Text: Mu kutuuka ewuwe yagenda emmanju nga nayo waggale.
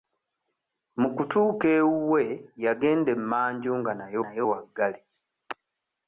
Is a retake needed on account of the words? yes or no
yes